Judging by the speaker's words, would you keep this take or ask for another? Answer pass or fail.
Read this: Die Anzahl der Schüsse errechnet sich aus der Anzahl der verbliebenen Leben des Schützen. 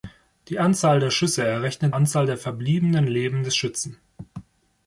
fail